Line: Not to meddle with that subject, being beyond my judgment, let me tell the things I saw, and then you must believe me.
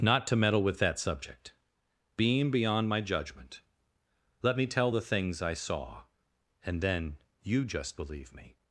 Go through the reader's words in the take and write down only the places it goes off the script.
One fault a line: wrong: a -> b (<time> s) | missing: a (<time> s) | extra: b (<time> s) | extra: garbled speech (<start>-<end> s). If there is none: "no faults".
wrong: must -> just (7.7 s)